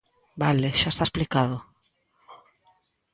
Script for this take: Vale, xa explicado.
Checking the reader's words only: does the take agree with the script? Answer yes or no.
no